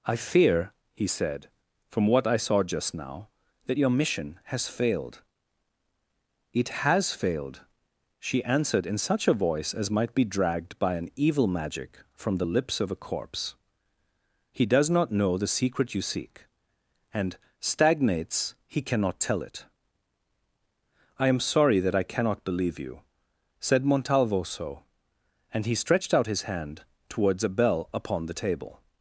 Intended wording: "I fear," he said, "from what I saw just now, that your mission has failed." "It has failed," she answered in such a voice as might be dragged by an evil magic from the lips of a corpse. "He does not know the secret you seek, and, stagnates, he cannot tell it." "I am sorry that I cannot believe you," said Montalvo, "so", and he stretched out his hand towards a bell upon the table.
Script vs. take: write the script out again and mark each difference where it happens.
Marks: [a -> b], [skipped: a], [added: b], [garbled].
"I fear," he said, "from what I saw just now, that your mission has failed." "It has failed," she answered in such a voice as might be dragged by an evil magic from the lips of a corpse. "He does not know the secret you seek, and, stagnates, he cannot tell it." "I am sorry that I cannot believe you," said Montalvo, "so", and he stretched out his hand towards a bell upon the table.